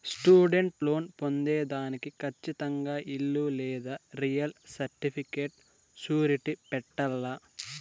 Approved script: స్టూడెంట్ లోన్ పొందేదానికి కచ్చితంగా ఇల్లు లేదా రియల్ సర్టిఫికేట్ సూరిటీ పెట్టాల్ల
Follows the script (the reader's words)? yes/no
yes